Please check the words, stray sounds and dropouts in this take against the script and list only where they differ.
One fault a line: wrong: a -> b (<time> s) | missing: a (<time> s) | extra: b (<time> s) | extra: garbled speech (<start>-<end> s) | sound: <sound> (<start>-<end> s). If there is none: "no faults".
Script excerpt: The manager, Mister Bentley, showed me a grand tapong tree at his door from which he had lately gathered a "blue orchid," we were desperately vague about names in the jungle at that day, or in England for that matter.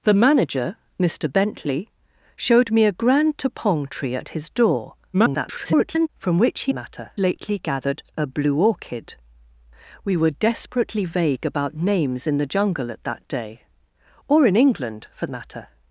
extra: garbled speech (5.1-6.1 s)
wrong: had -> matter (6.7 s)
missing: that (15.3 s)